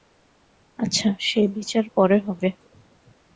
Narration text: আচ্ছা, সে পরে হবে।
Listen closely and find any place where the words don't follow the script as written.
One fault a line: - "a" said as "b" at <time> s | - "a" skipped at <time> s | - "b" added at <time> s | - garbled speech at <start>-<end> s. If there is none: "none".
- "বিচার" added at 1.5 s